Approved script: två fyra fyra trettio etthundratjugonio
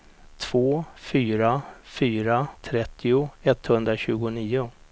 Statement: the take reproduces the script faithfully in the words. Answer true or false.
true